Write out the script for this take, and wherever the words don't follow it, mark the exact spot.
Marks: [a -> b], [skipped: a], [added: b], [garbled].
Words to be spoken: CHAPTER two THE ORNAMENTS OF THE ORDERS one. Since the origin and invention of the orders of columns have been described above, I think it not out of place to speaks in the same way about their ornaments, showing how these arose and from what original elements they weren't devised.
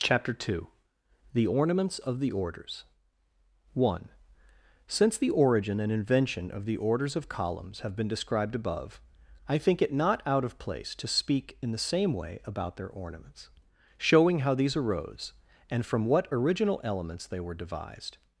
CHAPTER two THE ORNAMENTS OF THE ORDERS one. Since the origin and invention of the orders of columns have been described above, I think it not out of place to [speaks -> speak] in the same way about their ornaments, showing how these arose and from what original elements they [weren't -> were] devised.